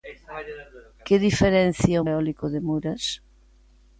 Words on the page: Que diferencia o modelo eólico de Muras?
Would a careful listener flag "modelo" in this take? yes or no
yes